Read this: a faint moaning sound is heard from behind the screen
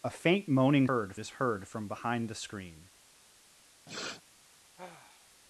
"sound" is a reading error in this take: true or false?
true